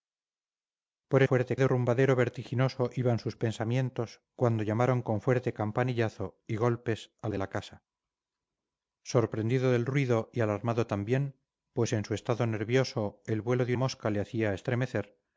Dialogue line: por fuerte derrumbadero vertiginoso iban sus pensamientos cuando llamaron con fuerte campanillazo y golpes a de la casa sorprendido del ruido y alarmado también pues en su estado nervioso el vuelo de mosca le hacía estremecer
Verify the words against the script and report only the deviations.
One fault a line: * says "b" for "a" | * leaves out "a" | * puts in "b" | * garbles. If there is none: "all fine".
all fine